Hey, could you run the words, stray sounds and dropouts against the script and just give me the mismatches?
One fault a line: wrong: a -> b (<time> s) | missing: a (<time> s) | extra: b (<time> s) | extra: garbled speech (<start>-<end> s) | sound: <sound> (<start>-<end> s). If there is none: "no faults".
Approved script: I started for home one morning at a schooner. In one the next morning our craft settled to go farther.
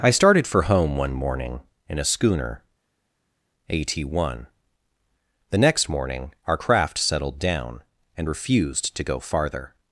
wrong: at -> in (1.9 s)
wrong: In -> A.t (3.7 s)
extra: down and refused (7.4 s)